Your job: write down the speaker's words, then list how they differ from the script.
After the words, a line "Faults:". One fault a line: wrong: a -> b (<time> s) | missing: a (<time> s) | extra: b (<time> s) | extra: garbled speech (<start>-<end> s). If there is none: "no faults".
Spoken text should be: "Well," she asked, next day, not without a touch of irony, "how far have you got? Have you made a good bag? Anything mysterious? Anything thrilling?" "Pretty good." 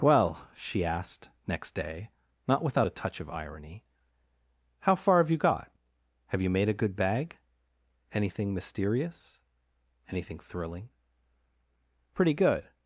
"Well," she asked, next day, not without a touch of irony, "how far have you got? Have you made a good bag? Anything mysterious? Anything thrilling?" "Pretty good."
Faults:
no faults